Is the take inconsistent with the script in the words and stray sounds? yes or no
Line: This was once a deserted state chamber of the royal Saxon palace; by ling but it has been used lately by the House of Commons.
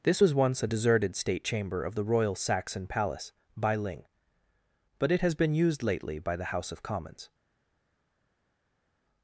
no